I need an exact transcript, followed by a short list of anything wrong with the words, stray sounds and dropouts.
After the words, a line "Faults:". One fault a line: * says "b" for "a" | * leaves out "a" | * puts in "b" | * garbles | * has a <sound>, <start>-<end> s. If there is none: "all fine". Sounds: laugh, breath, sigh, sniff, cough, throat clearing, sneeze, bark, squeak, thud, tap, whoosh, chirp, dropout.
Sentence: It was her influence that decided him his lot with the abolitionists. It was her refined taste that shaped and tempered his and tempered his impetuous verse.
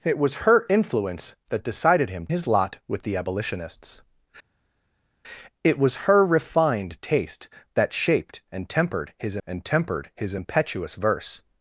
It was her influence that decided him his lot with the abolitionists. It was her refined taste that shaped and tempered his and tempered his impetuous verse.
Faults:
all fine